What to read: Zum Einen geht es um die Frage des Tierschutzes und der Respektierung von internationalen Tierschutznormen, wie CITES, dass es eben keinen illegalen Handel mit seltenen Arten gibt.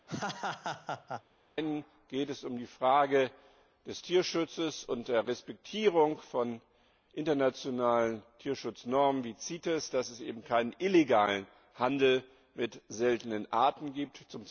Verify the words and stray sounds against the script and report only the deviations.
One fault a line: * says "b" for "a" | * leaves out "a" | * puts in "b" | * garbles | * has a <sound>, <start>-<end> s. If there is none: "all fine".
* has a laugh, 0.1-1.2 s